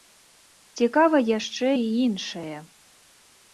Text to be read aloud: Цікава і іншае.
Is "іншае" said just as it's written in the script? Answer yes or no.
yes